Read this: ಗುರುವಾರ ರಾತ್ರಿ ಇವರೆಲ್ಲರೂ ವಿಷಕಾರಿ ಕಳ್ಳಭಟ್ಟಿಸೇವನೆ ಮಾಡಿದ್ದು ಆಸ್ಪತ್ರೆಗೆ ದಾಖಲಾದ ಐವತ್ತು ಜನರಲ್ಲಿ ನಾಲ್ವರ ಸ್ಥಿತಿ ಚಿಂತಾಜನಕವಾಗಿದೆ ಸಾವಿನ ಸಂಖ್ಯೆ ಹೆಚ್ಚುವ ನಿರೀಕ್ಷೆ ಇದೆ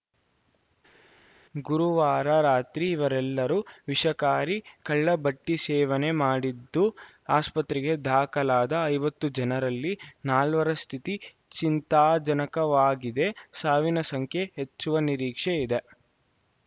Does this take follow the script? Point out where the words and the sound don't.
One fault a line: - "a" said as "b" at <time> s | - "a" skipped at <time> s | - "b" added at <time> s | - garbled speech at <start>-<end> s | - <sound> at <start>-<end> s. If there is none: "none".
none